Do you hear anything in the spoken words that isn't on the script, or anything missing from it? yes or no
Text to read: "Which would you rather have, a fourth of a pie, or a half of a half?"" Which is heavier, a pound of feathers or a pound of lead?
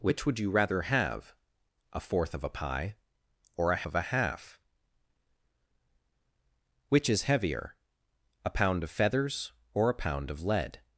yes